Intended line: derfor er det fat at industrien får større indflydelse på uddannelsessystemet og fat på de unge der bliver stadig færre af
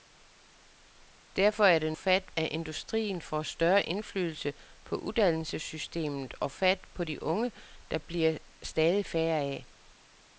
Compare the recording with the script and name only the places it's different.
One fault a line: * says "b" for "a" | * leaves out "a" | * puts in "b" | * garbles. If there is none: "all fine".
all fine